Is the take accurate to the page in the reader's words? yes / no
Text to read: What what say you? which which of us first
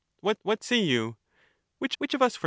yes